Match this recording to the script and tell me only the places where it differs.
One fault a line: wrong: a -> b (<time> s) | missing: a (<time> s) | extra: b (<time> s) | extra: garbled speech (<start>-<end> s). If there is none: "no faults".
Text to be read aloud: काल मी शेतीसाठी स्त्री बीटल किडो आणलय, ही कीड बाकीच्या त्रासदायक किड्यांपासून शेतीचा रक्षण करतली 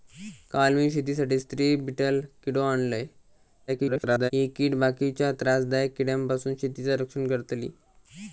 extra: garbled speech (3.7-4.3 s)